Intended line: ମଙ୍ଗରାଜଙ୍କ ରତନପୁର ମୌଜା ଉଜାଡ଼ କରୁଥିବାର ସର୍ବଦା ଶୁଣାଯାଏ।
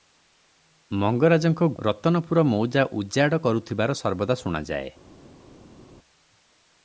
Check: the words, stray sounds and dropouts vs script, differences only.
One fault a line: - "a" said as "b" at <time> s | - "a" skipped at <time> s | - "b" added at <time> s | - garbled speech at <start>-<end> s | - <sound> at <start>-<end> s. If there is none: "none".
none